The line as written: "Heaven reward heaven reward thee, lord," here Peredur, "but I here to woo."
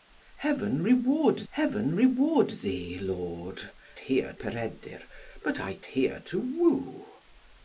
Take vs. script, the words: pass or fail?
pass